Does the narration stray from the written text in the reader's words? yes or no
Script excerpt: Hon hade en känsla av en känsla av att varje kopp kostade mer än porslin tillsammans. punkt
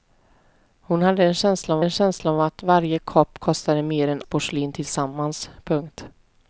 no